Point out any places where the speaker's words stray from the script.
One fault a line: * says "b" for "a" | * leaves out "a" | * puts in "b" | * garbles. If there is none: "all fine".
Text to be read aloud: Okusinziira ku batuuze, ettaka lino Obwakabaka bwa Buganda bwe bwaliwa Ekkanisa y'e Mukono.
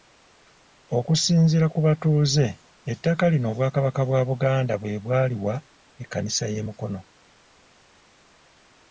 all fine